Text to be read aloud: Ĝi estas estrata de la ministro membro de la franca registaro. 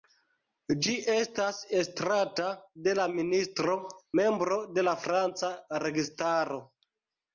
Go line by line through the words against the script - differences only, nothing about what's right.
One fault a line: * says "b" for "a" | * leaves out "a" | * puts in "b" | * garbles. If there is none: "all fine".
all fine